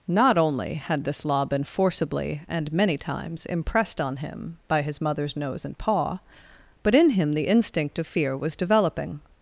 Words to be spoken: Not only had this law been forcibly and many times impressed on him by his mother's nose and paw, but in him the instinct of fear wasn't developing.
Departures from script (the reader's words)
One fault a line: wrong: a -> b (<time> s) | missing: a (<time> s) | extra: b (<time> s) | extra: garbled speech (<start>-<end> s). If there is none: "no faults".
wrong: wasn't -> was (8.4 s)